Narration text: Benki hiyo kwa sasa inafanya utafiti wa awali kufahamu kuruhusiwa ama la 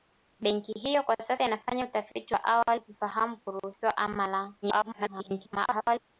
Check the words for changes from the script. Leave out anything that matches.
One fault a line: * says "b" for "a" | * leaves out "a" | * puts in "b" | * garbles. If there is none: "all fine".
* garbles